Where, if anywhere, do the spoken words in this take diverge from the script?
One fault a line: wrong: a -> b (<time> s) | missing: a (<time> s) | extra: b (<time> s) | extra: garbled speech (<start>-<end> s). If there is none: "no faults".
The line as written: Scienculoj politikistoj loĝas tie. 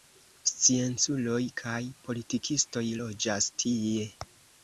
extra: kaj (1.6 s)